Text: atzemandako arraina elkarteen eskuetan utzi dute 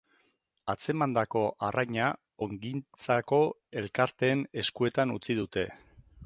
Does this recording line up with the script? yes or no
no